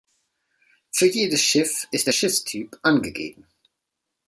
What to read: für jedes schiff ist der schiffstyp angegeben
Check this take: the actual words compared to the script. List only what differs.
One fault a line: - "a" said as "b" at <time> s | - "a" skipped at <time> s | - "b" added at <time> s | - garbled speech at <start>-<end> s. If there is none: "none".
none